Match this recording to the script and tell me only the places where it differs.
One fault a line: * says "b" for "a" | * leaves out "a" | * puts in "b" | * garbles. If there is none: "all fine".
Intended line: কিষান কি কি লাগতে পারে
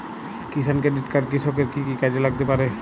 * puts in "ক্রেডিট কার্ড কৃষকের"
* puts in "কাজে"